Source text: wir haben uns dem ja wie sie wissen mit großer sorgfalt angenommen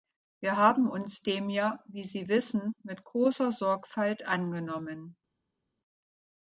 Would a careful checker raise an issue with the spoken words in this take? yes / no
no